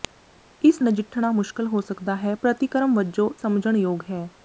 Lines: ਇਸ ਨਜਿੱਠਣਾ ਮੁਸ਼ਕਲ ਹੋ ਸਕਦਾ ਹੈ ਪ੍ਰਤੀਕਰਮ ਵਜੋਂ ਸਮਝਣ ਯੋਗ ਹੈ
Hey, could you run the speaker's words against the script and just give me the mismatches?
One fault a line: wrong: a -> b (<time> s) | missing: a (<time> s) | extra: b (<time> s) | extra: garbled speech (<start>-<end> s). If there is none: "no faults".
no faults